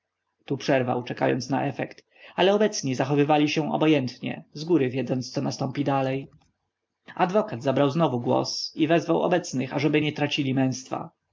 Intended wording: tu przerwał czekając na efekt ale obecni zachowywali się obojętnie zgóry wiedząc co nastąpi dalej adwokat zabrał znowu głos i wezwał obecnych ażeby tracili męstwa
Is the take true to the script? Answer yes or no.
no